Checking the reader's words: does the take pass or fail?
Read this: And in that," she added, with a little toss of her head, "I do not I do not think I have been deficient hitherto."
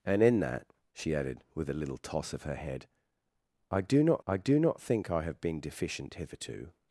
pass